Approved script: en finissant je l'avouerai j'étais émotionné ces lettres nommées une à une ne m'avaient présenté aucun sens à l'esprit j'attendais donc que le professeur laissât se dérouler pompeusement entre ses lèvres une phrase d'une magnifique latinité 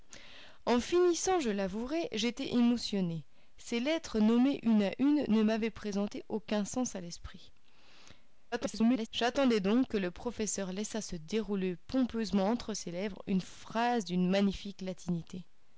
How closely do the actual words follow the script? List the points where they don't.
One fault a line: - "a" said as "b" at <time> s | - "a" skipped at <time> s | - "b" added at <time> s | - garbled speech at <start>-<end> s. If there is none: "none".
- garbled speech at 8.5-9.1 s